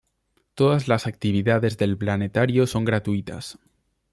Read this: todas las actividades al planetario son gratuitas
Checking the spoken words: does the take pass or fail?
fail